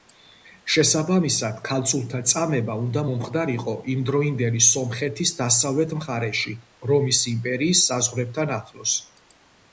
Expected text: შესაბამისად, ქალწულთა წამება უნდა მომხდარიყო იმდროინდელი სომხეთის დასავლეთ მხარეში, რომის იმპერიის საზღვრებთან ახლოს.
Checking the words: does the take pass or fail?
pass